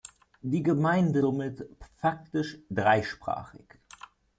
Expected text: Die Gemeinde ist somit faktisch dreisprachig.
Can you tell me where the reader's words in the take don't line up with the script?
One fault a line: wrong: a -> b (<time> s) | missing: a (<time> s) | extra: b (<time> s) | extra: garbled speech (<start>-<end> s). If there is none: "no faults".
missing: ist (1.2 s)